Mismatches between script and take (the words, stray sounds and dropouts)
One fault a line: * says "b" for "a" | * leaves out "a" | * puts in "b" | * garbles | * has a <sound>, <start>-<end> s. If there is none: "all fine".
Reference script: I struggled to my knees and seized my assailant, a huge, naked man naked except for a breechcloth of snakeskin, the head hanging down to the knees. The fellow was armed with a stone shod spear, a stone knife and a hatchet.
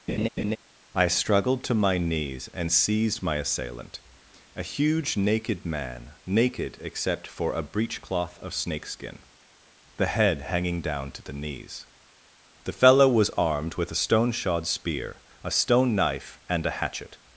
* has a laugh, 0.1-0.6 s